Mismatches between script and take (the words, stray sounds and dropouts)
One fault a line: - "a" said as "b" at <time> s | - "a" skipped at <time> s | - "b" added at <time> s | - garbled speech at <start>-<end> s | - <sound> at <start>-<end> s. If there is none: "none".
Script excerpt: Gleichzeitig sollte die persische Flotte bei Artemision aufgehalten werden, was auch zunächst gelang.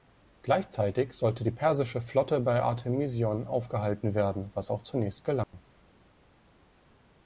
- dropout at 5.4-5.5 s